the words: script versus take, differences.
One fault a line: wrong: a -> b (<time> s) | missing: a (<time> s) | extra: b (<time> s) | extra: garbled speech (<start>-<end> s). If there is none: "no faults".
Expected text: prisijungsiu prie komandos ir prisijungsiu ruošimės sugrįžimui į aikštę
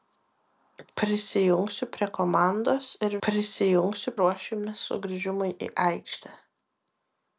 no faults